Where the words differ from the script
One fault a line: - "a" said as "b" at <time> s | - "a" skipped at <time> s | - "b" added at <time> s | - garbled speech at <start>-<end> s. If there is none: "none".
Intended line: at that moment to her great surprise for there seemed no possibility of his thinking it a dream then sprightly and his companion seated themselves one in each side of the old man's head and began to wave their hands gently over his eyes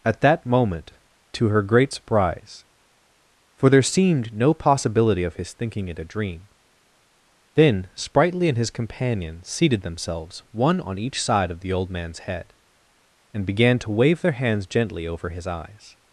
- "in" said as "on" at 10.8 s